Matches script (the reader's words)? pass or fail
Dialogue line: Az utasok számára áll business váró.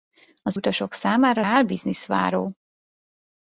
pass